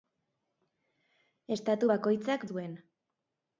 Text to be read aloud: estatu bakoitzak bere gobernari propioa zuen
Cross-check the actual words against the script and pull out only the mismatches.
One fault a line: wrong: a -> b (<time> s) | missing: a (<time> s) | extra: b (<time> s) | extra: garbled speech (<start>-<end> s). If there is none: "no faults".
missing: bere gobernari propioa (2.5 s)